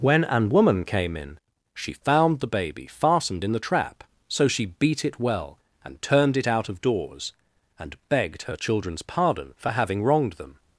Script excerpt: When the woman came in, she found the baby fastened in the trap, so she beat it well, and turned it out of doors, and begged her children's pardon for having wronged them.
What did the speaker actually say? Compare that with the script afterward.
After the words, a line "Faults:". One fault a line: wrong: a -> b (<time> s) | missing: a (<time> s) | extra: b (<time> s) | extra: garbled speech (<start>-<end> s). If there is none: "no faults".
When an woman came in, she found the baby fastened in the trap, so she beat it well, and turned it out of doors, and begged her children's pardon for having wronged them.
Faults:
wrong: the -> an (0.2 s)